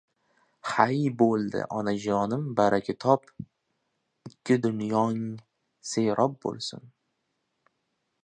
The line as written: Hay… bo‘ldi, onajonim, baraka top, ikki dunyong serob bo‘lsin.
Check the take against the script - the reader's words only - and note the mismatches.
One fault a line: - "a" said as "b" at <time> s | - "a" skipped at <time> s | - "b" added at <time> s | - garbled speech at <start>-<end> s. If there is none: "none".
none